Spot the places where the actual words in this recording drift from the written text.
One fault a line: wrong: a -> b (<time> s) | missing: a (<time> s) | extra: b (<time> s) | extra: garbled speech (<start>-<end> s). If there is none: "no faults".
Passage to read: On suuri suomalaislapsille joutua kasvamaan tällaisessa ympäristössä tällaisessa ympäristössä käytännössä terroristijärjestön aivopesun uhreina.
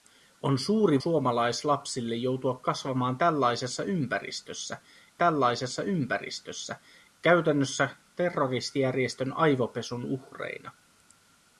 no faults